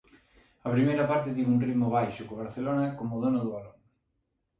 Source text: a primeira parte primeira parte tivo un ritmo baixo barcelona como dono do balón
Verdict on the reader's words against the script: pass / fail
fail